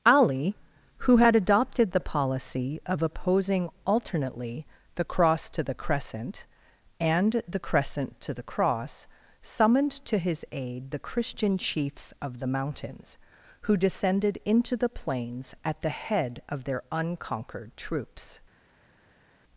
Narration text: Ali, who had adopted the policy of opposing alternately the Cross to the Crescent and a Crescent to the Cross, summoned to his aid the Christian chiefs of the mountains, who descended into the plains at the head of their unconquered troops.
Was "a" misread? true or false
true